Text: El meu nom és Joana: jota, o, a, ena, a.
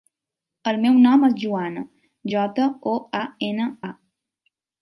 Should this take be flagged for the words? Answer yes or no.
no